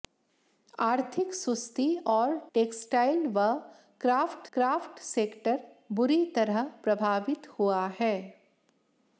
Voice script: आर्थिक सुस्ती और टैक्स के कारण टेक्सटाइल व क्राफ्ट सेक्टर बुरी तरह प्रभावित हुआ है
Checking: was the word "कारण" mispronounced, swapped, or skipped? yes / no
yes